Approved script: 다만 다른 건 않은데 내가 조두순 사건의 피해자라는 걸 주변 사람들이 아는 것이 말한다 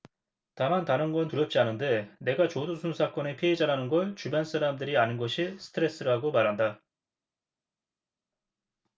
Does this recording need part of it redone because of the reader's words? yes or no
yes